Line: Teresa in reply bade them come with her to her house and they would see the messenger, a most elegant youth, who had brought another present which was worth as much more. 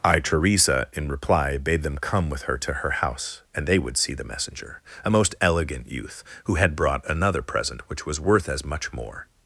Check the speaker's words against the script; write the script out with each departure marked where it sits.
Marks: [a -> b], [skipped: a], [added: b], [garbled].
[added: I] Teresa in reply bade them come with her to her house and they would see the messenger, a most elegant youth, who had brought another present which was worth as much more.